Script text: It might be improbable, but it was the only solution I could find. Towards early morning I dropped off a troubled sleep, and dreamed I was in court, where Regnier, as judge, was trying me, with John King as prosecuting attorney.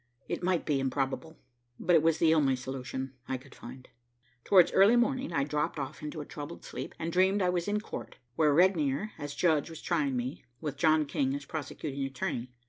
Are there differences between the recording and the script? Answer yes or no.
yes